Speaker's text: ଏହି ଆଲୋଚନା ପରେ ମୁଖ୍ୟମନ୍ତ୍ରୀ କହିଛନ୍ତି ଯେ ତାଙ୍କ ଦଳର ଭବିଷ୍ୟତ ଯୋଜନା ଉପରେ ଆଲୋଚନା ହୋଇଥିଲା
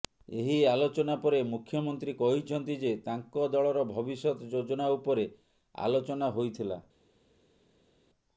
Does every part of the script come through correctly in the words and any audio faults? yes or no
yes